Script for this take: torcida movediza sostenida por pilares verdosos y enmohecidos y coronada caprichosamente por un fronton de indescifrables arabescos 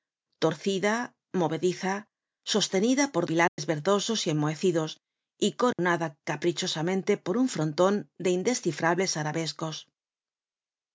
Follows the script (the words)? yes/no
yes